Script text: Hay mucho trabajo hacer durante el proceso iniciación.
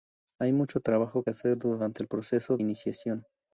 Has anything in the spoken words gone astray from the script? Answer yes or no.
no